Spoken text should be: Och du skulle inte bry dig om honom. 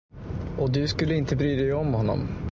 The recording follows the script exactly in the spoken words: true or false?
true